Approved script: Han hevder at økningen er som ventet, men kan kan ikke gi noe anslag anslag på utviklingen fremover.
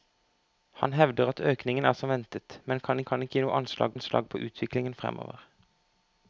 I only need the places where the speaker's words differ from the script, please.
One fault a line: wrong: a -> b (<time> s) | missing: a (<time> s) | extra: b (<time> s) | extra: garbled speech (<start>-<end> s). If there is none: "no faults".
no faults